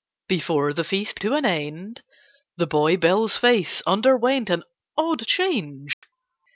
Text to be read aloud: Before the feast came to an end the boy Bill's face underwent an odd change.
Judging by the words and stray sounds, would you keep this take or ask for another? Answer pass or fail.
fail